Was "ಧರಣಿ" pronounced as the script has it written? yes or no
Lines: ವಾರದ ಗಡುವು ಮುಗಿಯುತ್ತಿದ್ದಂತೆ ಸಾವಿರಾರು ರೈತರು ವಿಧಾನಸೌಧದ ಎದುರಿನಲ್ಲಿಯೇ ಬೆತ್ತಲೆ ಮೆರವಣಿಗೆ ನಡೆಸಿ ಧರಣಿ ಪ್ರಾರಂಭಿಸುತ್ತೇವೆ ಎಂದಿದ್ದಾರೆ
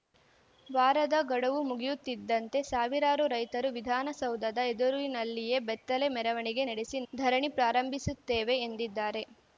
yes